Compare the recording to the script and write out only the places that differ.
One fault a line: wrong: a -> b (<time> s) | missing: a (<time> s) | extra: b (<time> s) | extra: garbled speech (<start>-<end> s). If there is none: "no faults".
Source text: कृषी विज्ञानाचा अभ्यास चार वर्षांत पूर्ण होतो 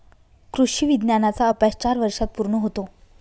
no faults